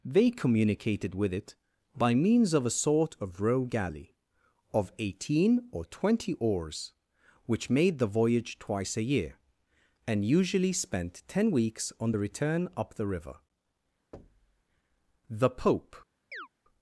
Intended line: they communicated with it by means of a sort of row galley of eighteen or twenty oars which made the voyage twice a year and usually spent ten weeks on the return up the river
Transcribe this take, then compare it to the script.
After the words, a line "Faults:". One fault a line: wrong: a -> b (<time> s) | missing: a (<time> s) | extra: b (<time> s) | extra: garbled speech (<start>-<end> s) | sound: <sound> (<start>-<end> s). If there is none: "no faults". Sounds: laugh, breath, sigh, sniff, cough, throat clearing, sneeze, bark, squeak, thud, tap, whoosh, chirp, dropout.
they communicated with it by means of a sort of row galley of eighteen or twenty oars which made the voyage twice a year and usually spent ten weeks on the return up the river the pope
Faults:
sound: thud (14.1-14.6 s)
extra: the pope (15.3 s)
sound: chirp (16.3-16.5 s)